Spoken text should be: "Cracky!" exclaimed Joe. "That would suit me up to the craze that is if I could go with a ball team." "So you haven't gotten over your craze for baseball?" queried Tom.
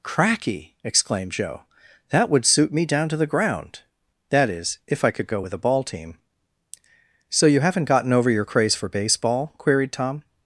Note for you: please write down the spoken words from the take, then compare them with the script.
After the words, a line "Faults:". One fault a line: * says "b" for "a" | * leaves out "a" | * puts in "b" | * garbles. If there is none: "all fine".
"Cracky!" exclaimed Joe. "That would suit me down to the ground that is if I could go with a ball team." "So you haven't gotten over your craze for baseball?" queried Tom.
Faults:
* says "down" for "up"
* says "ground" for "craze"